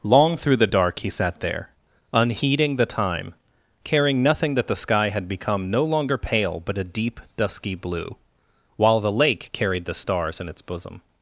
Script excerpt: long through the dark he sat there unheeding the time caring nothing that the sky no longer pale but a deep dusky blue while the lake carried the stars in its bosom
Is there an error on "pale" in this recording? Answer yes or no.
no